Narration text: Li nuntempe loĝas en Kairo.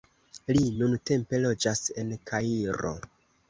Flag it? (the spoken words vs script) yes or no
no